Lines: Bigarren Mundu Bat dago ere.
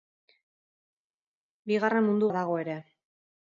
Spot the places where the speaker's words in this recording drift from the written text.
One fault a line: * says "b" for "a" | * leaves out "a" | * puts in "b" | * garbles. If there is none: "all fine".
all fine